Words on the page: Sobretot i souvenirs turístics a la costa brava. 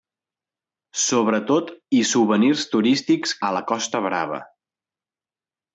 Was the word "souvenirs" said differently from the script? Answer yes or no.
no